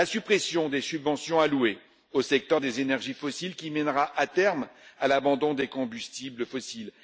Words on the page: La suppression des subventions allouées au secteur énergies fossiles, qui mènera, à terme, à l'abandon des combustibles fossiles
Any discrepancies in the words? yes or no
yes